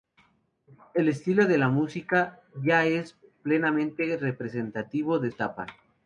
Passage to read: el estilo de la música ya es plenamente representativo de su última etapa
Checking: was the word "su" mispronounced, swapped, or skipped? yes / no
yes